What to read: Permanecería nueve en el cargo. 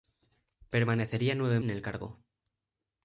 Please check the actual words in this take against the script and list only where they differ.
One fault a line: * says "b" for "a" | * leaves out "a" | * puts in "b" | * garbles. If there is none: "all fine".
all fine